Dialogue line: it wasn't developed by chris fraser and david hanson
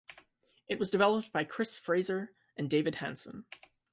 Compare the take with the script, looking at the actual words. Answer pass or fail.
fail